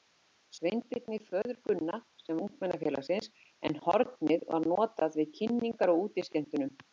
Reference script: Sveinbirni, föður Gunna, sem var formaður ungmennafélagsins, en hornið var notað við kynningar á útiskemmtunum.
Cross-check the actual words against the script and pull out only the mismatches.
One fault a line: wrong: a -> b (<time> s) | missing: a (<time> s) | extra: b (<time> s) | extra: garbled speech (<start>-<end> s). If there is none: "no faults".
missing: var formaður (2.4 s)